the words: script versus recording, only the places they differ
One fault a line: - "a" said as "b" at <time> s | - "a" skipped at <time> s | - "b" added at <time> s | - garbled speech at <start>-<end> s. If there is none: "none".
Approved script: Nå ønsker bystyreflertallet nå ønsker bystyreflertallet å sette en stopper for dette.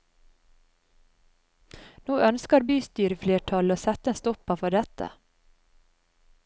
- "nå ønsker bystyreflertallet" skipped at 3.7 s